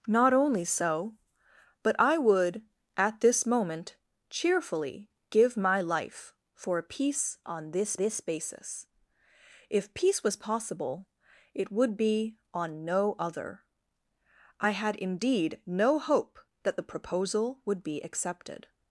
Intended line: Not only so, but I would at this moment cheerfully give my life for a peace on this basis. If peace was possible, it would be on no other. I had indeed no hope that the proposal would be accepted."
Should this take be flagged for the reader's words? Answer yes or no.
yes